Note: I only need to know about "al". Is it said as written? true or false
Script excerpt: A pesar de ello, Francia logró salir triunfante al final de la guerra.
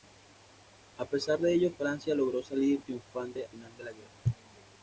false